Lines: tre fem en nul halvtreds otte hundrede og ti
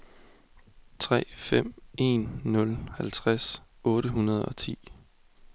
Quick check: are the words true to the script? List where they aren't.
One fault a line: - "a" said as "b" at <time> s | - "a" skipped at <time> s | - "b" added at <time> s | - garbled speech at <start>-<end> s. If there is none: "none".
none